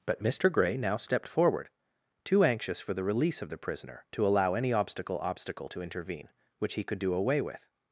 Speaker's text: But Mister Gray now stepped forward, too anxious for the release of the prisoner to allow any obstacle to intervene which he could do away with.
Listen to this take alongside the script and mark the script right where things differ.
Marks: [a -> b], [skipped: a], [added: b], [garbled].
But Mister Gray now stepped forward, too anxious for the release of the prisoner to allow any obstacle [added: obstacle] to intervene which he could do away with.